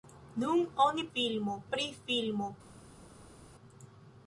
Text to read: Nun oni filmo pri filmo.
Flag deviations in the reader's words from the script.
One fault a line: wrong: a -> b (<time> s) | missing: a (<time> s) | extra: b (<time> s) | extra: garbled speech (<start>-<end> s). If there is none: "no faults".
no faults